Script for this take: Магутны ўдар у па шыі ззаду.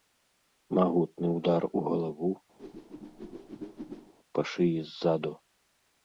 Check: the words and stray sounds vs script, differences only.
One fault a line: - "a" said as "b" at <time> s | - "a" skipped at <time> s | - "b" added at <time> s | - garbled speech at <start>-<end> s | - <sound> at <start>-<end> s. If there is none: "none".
- "галаву" added at 1.9 s
- whoosh at 2.6-4.1 s